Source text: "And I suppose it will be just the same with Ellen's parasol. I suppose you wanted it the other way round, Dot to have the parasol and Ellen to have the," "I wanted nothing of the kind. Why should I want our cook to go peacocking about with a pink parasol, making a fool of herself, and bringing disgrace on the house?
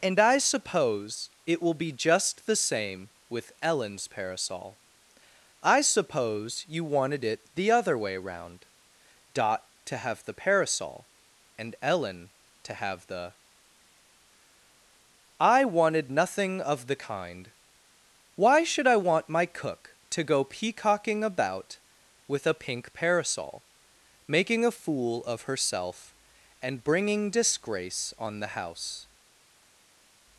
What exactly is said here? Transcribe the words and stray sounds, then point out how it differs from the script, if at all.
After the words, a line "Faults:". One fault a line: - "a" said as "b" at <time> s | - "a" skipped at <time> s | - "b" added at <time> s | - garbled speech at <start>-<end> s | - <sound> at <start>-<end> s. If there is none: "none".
"And I suppose it will be just the same with Ellen's parasol. I suppose you wanted it the other way round, Dot to have the parasol and Ellen to have the," "I wanted nothing of the kind. Why should I want my cook to go peacocking about with a pink parasol, making a fool of herself, and bringing disgrace on the house?
Faults:
- "our" said as "my" at 19.3 s